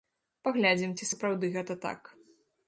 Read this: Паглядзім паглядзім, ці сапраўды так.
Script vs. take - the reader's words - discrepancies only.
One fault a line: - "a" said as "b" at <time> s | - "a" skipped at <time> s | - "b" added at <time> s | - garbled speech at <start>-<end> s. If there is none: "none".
- "паглядзім" skipped at 0.9 s
- "гэта" added at 1.6 s